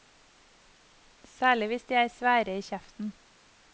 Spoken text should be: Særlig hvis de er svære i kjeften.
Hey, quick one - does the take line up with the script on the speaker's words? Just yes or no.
yes